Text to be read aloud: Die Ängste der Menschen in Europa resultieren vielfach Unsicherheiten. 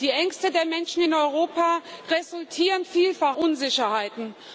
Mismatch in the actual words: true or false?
false